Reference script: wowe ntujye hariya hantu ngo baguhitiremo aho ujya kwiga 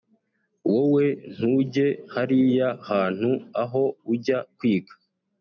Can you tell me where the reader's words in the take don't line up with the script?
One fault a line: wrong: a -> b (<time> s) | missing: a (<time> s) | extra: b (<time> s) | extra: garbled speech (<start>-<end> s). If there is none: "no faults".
missing: ngo baguhitiremo (3.3 s)